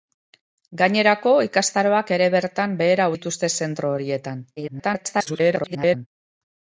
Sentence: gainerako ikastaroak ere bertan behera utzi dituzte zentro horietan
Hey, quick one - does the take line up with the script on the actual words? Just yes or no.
no